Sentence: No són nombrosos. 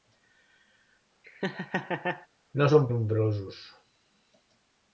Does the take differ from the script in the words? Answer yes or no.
no